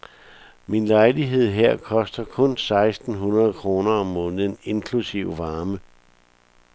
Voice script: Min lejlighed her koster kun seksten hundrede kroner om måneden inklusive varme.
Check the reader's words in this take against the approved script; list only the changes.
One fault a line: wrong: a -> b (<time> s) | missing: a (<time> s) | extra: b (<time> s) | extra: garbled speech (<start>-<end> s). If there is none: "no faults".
no faults